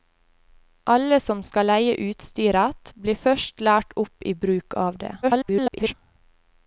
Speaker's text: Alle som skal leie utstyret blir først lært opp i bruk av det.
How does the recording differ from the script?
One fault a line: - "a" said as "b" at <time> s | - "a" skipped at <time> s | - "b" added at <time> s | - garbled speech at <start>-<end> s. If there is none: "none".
- garbled speech at 5.2-5.9 s